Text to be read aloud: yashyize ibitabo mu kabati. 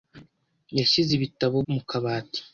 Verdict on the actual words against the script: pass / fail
pass